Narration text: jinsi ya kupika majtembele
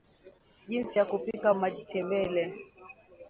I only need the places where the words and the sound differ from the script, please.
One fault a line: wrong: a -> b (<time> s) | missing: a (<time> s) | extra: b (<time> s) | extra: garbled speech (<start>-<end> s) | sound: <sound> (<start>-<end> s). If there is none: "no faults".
no faults